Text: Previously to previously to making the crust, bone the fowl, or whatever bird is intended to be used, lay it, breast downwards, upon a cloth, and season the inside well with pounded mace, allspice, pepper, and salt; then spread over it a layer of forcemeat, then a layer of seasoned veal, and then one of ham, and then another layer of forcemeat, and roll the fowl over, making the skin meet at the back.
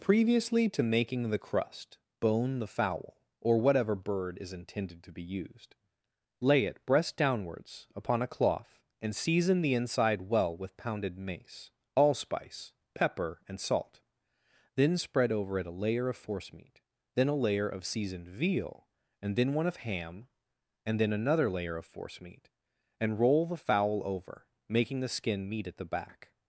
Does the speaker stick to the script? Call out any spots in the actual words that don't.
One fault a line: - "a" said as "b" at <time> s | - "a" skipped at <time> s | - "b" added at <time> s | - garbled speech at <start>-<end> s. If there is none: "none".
- "previously to" skipped at 0.8 s